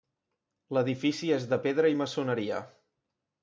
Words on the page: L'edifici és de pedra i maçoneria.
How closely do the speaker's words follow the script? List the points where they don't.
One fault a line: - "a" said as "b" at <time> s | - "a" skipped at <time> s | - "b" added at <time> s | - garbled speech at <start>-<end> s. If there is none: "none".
none